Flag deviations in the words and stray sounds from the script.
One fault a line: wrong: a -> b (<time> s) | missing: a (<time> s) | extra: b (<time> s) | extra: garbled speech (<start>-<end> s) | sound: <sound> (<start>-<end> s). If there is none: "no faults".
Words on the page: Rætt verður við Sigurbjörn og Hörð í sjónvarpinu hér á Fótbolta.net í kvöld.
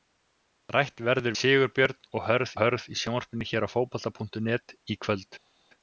missing: við (1.4 s)
extra: Hörð (2.6 s)